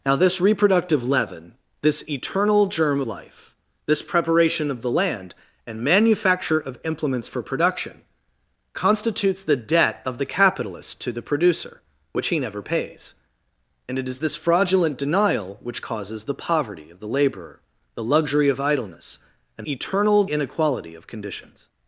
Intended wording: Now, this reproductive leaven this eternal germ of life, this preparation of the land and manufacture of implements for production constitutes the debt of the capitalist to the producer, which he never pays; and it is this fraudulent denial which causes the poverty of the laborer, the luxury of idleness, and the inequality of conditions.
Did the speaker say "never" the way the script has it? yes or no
yes